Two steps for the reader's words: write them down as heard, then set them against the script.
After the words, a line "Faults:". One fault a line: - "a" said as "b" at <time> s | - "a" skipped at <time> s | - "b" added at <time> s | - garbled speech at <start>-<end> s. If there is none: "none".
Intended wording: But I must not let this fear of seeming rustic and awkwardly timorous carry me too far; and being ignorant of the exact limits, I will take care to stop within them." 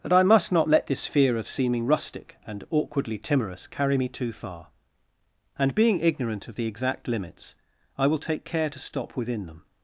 That I must not let this fear of seeming rustic and awkwardly timorous carry me too far; and being ignorant of the exact limits, I will take care to stop within them."
Faults:
- "But" said as "That" at 0.0 s